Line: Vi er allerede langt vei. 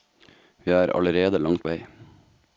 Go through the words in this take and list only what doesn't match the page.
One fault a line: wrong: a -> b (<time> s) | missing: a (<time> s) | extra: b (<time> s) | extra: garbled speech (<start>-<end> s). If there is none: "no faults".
no faults